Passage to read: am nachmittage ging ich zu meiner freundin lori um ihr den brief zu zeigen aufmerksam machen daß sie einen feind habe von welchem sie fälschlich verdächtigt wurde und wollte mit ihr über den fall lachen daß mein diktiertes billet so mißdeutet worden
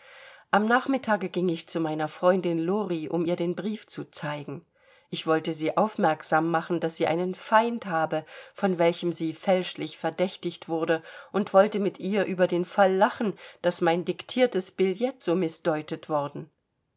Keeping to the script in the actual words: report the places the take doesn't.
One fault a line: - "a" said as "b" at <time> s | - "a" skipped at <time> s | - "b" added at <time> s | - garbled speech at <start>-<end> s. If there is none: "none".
- "ich wollte sie" added at 5.1 s